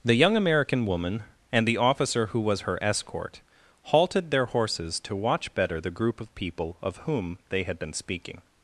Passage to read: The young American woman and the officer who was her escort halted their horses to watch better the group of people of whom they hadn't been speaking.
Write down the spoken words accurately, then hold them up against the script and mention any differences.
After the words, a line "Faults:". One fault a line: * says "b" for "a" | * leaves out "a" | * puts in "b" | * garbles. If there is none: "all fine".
The young American woman and the officer who was her escort halted their horses to watch better the group of people of whom they had been speaking.
Faults:
* says "had" for "hadn't"